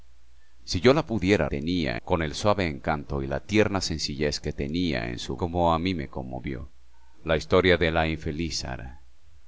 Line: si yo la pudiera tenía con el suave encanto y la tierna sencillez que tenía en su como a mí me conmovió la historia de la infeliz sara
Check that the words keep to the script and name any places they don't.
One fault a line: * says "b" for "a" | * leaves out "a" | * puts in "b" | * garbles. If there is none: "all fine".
all fine